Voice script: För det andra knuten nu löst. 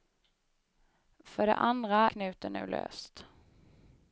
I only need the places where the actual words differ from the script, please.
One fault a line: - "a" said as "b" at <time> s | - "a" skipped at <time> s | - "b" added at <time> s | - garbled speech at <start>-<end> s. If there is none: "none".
none